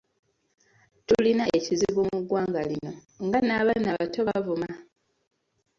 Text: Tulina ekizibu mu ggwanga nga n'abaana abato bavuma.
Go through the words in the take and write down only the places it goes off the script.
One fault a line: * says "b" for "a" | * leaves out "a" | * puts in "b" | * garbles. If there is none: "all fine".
* puts in "lino"